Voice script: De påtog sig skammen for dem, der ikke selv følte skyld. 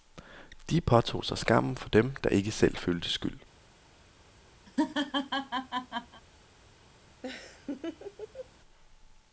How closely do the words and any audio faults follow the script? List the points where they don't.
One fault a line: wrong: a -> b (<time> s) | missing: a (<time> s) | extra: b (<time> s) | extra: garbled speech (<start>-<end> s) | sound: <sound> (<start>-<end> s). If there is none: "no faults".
sound: laugh (4.7-6.2 s)
sound: laugh (7.2-8.5 s)